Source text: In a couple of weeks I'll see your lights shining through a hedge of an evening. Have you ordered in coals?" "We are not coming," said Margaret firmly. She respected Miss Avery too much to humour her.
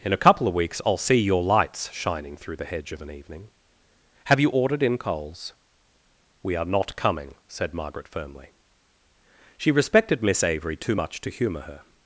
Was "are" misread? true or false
false